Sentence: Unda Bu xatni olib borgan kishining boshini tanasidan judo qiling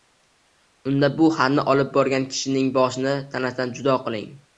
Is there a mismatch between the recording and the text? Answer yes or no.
no